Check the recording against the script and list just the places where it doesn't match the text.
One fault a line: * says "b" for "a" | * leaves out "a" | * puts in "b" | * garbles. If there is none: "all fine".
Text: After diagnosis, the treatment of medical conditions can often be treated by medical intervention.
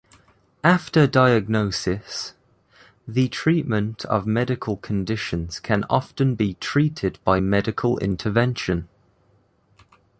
all fine